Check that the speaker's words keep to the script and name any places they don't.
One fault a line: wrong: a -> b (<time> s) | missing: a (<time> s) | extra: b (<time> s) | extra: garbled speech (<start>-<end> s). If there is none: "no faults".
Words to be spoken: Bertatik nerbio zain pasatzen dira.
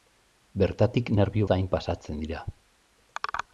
no faults